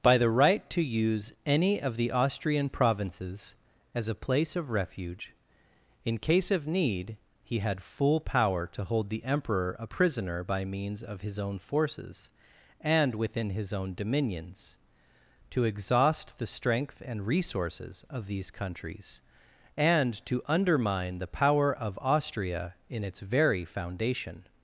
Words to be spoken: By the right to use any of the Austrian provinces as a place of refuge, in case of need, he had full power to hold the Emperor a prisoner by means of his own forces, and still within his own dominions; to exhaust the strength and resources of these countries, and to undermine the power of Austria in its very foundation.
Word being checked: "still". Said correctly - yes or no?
no